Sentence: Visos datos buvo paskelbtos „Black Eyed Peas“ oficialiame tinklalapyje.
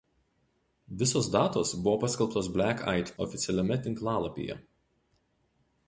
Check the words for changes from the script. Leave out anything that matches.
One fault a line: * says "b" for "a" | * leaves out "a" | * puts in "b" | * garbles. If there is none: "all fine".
* leaves out "Peas"